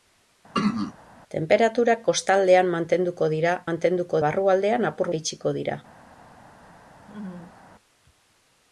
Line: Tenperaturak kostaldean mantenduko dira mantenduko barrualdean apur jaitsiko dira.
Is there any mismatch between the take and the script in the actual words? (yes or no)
no